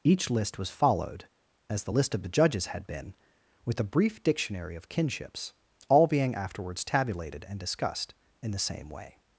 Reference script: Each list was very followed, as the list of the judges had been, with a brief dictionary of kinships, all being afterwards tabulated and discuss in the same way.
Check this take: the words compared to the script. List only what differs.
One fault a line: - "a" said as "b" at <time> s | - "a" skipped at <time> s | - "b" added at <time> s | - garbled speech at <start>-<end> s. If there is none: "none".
- "very" skipped at 0.7 s
- "discuss" said as "discussed" at 7.6 s